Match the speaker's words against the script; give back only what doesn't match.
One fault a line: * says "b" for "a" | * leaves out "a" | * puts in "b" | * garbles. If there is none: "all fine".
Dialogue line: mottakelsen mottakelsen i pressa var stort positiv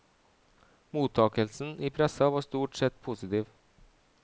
* leaves out "mottakelsen"
* puts in "sett"